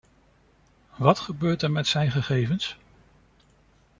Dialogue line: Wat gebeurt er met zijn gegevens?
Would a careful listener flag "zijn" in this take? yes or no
no